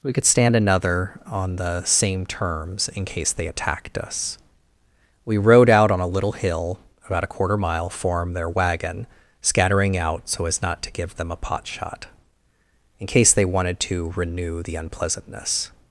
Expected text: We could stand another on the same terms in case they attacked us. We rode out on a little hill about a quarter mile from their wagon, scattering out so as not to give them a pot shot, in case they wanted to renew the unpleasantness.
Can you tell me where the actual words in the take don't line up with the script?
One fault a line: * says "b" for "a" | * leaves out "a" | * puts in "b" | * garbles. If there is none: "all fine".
* says "form" for "from"